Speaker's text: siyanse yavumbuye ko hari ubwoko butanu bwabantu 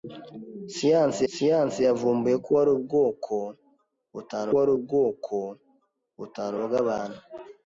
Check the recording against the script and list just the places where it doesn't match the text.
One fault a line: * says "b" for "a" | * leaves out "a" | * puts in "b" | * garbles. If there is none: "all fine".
* puts in "siyanse"
* puts in "hari ubwoko butanu"